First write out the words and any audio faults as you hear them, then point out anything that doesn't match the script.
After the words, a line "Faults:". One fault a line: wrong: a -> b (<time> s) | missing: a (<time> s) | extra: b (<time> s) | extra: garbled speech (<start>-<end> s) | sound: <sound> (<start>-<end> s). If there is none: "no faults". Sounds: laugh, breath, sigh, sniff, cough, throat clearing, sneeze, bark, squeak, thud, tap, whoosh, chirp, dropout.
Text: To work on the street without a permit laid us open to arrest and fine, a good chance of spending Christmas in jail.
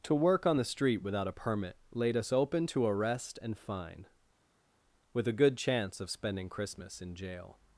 To work on the street without a permit laid us open to arrest and fine, with a good chance of spending Christmas in jail.
Faults:
extra: with (5.1 s)